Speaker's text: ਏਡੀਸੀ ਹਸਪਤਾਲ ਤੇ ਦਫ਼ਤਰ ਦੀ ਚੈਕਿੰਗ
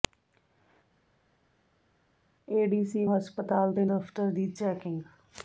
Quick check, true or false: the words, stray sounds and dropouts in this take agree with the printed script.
true